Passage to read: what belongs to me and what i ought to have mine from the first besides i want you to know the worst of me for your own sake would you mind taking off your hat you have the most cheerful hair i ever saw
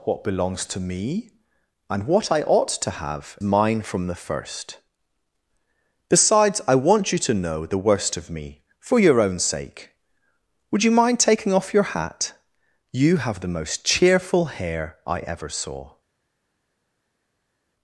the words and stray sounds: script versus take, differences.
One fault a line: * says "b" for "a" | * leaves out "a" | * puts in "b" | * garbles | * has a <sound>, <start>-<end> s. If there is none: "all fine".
all fine